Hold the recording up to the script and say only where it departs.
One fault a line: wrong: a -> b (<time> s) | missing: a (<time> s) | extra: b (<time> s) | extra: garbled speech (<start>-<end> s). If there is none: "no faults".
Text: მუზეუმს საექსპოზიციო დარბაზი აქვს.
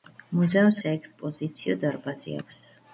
no faults